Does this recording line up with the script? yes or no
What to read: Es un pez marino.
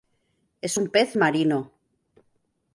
yes